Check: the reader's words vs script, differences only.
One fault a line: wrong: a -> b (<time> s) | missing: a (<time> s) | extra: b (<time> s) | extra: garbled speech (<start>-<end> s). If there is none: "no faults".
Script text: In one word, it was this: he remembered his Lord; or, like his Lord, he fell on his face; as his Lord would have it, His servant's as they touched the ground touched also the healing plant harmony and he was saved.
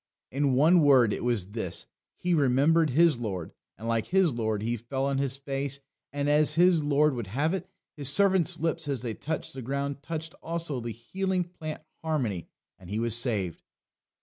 wrong: or -> and (3.8 s)
extra: and (6.1 s)
extra: lips (8.6 s)